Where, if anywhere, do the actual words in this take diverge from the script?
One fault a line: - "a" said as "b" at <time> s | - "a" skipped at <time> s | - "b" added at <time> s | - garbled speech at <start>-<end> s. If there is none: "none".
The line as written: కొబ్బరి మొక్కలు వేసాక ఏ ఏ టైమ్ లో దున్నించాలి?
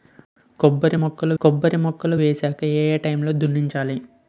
- "కొబ్బరి మొక్కలు" added at 1.4 s